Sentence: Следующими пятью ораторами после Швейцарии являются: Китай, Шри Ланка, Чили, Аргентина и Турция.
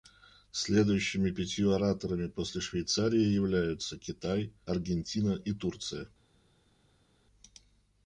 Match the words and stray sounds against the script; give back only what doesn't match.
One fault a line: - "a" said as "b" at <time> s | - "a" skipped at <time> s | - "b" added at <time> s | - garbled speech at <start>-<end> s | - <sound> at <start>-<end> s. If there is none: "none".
- "Шри Ланка Чили" skipped at 4.5 s